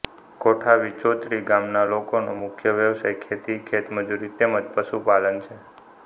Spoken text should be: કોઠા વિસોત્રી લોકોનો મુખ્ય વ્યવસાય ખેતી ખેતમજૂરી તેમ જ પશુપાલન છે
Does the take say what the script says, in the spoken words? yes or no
no